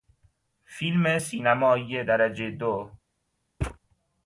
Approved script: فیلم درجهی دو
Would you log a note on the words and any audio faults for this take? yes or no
yes